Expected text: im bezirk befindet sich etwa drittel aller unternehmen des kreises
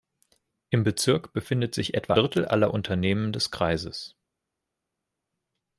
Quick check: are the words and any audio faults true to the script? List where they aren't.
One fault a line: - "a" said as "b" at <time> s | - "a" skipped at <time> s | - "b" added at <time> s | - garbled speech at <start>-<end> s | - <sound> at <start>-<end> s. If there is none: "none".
none